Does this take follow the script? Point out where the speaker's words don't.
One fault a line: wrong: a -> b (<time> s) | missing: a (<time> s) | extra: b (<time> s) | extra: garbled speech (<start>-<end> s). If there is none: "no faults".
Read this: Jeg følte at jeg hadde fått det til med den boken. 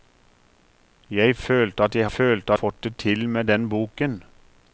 wrong: hadde -> følte (2.0 s)